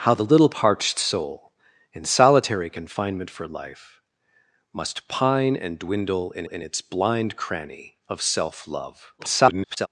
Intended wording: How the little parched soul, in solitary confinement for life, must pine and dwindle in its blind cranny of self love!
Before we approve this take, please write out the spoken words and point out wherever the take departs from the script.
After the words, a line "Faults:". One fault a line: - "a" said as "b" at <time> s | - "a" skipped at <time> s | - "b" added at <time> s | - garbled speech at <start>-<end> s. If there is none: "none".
How the little parched soul, in solitary confinement for life, must pine and dwindle in in its blind cranny of self love! [garbled]
Faults:
- "in" added at 6.5 s
- garbled speech at 9.2-9.9 s